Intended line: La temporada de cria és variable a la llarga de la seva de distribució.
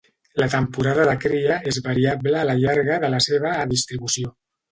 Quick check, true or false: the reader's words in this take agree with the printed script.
true